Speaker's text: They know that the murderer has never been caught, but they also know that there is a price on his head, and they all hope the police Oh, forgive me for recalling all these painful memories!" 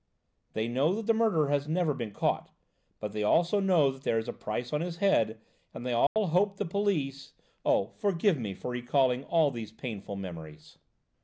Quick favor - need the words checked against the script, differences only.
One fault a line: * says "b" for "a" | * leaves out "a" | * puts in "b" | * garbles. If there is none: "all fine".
all fine